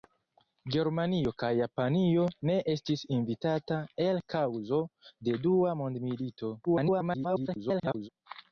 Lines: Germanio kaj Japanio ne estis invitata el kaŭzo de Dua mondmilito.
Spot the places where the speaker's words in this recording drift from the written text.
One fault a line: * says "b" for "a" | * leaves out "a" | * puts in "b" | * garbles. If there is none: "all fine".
* garbles